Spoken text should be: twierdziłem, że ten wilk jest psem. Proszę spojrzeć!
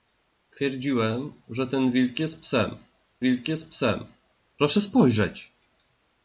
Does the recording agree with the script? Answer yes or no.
no